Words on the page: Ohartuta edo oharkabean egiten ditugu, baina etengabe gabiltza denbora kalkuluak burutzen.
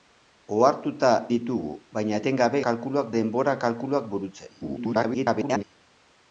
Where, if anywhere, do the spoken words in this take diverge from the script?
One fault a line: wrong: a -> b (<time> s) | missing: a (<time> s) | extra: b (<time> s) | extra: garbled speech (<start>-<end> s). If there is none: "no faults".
missing: edo oharkabean egiten (1.1 s)
wrong: gabiltza -> kalkuluak (2.7 s)
extra: garbled speech (4.6-5.6 s)